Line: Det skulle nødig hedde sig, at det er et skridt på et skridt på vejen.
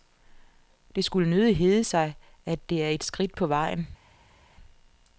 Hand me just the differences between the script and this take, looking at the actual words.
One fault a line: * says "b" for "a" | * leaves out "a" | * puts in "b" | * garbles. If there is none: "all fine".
* leaves out "et skridt på"